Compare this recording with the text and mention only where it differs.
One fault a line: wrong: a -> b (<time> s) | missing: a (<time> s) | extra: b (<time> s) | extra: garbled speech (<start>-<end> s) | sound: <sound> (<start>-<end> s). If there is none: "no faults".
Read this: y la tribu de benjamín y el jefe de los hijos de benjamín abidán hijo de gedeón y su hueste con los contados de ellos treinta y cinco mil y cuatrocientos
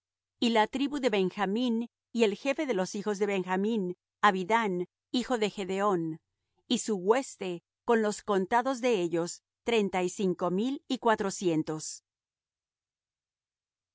no faults